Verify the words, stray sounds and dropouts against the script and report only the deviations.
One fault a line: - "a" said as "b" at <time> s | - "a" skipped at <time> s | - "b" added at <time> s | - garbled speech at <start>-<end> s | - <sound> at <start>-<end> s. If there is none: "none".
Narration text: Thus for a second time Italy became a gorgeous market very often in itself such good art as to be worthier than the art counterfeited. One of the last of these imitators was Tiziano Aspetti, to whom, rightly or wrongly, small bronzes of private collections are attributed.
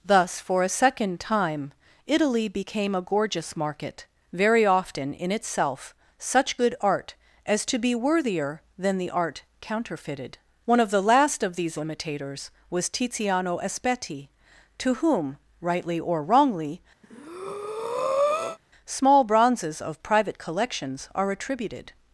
- breath at 17.0-18.6 s